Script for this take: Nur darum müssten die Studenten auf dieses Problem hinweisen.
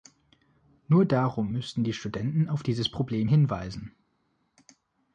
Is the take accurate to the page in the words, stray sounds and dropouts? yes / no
yes